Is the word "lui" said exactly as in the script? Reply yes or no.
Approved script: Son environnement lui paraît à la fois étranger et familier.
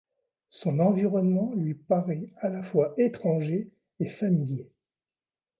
yes